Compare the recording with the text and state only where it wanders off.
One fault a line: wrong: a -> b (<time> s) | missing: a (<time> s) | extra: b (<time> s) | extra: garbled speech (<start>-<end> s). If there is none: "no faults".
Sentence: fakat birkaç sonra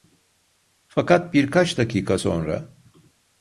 extra: dakika (1.8 s)